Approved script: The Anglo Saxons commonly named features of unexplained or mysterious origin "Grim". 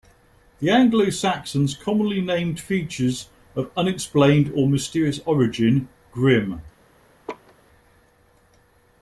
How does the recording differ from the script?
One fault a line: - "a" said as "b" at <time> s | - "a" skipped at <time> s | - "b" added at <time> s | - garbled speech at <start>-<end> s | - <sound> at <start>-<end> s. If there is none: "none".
- laugh at 7.3-7.5 s